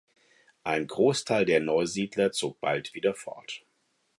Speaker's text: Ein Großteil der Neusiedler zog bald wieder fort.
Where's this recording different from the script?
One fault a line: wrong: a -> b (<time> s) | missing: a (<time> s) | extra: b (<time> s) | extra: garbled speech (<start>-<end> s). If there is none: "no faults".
no faults